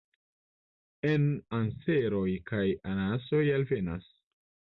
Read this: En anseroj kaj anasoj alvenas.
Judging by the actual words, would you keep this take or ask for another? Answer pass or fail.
pass